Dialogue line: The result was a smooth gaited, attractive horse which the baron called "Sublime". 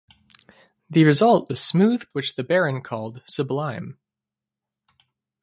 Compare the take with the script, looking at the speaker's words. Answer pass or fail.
fail